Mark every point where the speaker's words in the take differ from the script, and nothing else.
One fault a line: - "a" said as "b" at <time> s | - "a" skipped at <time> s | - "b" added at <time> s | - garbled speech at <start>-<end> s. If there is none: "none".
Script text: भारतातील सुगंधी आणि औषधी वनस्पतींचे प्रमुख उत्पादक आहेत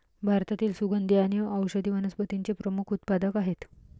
none